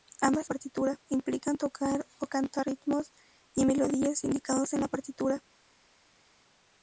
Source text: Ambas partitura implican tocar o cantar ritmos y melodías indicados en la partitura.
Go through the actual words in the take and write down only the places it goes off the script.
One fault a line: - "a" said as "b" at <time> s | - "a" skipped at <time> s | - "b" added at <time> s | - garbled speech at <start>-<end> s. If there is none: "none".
none